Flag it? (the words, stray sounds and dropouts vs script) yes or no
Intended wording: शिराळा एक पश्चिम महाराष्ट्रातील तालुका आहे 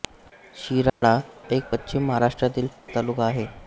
yes